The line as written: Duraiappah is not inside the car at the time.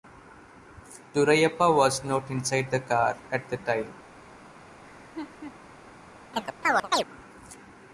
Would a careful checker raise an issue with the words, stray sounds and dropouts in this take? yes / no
yes